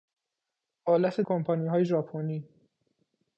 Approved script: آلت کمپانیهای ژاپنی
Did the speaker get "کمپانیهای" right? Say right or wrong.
right